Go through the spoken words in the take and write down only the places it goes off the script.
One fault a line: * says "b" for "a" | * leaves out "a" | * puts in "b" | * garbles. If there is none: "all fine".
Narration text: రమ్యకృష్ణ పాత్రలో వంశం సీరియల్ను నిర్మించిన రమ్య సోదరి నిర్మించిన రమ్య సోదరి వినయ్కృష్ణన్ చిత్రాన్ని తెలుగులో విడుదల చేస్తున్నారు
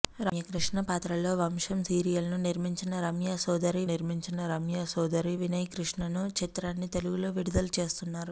all fine